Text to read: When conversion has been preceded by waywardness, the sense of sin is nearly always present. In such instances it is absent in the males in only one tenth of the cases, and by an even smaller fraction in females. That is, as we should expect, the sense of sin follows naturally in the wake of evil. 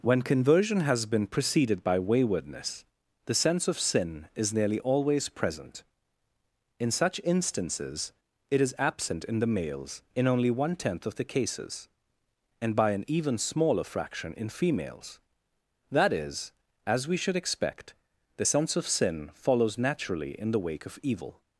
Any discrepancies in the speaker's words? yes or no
no